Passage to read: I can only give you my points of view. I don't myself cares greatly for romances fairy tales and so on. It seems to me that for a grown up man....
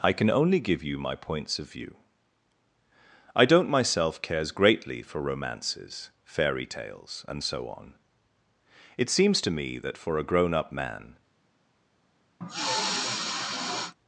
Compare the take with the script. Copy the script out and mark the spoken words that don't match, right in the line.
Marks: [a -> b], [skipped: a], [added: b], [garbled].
I can only give you my points of view. I don't myself cares greatly for romances fairy tales and so on. It seems to me that for a grown up man....